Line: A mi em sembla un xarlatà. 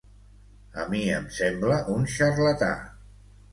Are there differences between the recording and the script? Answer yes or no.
no